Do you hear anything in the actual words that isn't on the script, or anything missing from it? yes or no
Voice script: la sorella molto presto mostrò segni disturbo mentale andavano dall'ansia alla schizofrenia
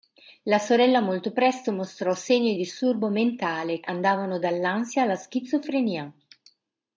no